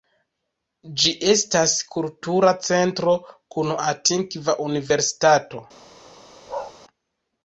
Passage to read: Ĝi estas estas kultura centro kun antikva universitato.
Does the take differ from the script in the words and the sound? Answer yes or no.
yes